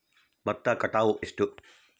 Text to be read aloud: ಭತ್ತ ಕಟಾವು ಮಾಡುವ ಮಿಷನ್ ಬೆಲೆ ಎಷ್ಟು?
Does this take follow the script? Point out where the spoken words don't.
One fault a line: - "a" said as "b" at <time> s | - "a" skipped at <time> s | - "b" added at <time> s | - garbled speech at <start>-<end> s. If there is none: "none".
- "ಮಾಡುವ ಮಿಷನ್ ಬೆಲೆ" skipped at 1.2 s